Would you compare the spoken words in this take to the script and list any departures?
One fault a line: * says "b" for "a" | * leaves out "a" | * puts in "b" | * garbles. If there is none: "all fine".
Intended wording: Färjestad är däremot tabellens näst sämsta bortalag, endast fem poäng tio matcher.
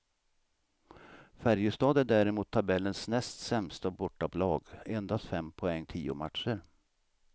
all fine